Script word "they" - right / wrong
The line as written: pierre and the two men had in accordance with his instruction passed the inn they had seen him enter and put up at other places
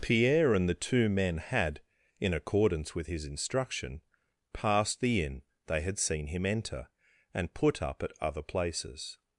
right